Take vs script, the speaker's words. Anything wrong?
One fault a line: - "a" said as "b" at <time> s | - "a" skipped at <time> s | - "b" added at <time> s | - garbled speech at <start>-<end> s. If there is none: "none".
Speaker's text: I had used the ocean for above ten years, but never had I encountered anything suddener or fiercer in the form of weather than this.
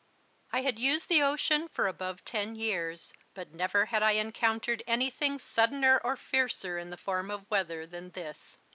none